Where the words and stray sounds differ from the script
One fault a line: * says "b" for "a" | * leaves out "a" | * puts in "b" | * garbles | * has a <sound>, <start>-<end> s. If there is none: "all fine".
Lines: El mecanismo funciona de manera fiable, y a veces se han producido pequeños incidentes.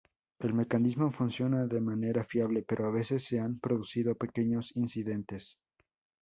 * says "pero" for "y"